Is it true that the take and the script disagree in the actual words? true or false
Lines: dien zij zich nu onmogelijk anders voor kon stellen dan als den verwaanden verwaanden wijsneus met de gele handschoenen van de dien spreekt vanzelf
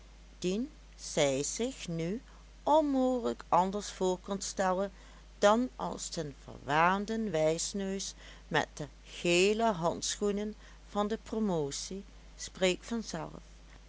true